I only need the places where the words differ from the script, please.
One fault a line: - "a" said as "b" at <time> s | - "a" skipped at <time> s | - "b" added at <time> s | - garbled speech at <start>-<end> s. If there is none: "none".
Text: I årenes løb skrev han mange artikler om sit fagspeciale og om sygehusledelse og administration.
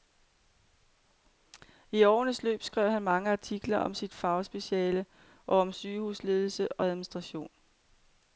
none